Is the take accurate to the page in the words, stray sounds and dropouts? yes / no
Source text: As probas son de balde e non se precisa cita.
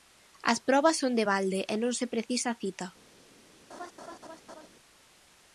no